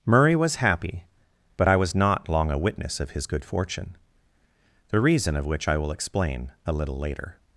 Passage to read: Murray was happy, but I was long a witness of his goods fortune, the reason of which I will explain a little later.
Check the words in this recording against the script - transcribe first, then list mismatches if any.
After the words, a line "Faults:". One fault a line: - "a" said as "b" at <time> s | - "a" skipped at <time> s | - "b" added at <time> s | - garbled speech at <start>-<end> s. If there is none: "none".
Murray was happy, but I was not long a witness of his good fortune, the reason of which I will explain a little later.
Faults:
- "not" added at 1.9 s
- "goods" said as "good" at 3.3 s